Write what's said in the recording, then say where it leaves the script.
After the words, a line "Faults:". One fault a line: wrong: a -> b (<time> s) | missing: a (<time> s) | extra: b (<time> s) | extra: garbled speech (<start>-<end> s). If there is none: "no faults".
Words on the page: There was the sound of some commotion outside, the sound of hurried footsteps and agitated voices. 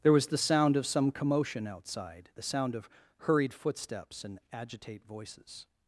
There was the sound of some commotion outside, the sound of hurried footsteps and agitate voices.
Faults:
wrong: agitated -> agitate (4.5 s)